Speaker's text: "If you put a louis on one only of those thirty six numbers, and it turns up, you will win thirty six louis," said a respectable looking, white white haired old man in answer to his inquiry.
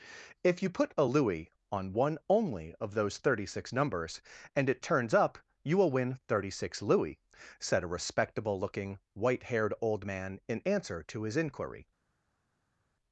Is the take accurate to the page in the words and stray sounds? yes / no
no